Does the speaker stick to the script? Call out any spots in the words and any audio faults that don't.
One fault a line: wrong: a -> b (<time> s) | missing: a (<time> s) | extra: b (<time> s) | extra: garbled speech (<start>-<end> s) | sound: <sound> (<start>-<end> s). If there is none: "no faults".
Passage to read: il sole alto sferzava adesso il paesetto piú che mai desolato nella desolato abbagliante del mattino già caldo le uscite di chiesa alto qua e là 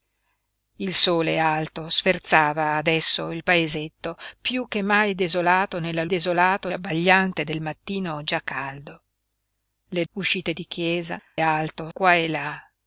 no faults